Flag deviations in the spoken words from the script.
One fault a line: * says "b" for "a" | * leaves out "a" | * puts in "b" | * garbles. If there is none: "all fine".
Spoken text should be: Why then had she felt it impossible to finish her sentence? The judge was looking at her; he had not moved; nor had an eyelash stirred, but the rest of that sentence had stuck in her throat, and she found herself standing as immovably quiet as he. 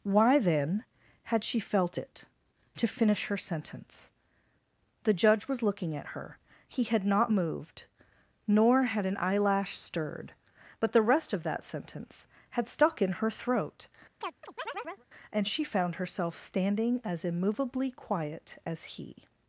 * leaves out "impossible"